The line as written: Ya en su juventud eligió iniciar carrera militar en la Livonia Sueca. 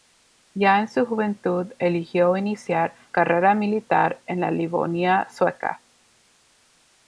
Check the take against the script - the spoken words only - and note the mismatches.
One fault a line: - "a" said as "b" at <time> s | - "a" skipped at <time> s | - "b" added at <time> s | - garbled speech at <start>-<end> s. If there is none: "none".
none